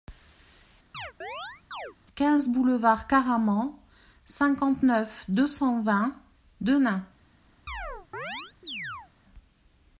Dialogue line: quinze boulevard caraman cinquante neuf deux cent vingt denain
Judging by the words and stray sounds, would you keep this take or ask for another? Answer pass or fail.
fail